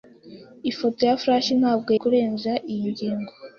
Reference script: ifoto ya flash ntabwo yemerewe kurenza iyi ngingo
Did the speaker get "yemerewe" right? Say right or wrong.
wrong